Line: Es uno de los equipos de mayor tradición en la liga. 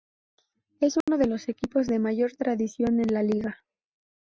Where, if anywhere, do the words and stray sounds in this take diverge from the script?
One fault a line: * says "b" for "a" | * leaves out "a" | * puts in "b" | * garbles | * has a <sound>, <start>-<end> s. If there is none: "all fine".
* has a dropout, 1.0-1.1 s